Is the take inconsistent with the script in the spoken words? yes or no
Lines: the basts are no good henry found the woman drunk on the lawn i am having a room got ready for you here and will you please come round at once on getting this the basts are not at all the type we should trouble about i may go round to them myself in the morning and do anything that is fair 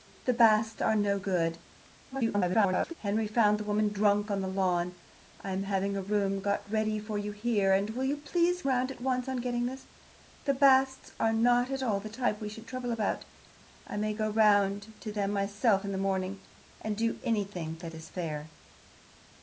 yes